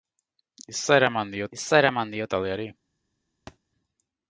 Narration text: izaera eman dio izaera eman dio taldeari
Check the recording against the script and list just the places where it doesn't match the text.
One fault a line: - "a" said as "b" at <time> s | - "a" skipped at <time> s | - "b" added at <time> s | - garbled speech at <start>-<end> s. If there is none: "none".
none